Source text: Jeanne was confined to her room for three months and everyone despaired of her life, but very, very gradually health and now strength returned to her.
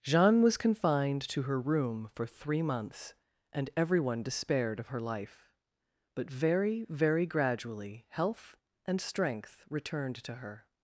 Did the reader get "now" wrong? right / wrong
wrong